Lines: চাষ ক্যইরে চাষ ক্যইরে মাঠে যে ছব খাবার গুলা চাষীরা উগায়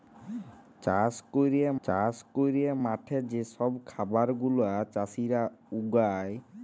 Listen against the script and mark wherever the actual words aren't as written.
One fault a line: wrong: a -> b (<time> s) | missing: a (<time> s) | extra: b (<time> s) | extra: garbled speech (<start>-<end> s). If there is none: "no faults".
no faults